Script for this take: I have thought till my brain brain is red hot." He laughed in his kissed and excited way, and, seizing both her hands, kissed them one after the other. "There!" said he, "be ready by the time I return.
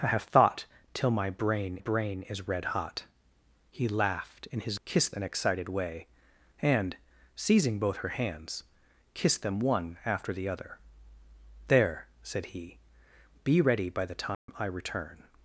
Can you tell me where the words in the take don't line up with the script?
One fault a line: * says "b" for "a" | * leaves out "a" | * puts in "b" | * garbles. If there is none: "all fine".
all fine